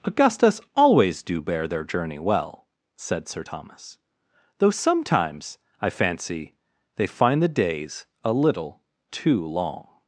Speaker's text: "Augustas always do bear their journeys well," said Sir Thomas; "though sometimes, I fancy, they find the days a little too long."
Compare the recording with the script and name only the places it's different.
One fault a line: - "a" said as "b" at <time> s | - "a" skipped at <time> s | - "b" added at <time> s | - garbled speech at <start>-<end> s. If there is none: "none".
- "journeys" said as "journey" at 1.8 s